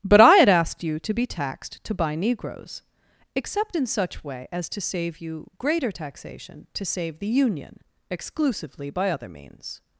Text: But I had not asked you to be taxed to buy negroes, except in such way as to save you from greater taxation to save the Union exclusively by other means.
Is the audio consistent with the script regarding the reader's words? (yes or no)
no